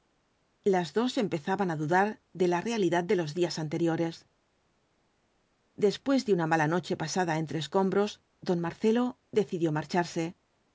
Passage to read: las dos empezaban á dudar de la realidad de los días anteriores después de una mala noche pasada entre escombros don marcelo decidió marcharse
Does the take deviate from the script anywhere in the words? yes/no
no